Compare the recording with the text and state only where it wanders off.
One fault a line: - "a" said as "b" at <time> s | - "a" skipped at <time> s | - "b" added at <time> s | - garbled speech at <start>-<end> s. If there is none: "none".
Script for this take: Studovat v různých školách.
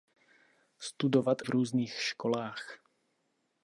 none